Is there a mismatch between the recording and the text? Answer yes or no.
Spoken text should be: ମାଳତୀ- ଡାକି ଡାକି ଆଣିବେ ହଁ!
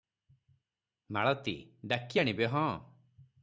yes